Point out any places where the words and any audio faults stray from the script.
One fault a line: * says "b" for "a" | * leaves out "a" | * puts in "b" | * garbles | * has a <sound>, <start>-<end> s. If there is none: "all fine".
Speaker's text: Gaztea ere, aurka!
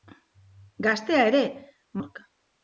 all fine